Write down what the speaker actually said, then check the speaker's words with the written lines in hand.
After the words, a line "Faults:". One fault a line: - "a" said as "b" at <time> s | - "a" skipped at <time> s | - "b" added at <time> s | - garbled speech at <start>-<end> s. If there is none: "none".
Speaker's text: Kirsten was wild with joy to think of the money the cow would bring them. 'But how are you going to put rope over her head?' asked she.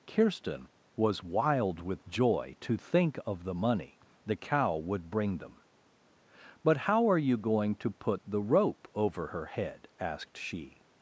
Kirsten was wild with joy to think of the money the cow would bring them. 'But how are you going to put the rope over her head?' asked she.
Faults:
- "the" added at 8.2 s